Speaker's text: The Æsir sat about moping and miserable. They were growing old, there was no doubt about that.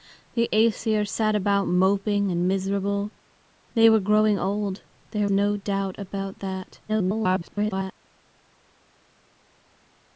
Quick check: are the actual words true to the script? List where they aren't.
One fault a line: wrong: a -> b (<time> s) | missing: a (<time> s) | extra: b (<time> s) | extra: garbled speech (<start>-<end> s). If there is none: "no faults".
missing: was (5.3 s)
extra: garbled speech (6.9-7.9 s)